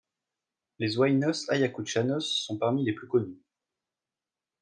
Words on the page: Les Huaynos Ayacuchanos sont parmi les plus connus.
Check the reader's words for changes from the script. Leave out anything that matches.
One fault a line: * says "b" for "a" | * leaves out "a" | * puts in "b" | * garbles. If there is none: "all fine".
all fine